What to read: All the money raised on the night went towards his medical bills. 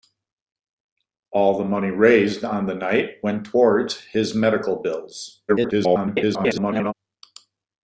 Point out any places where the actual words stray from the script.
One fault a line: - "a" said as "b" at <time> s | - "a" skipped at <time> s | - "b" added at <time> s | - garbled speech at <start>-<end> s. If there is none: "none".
- garbled speech at 5.5-6.9 s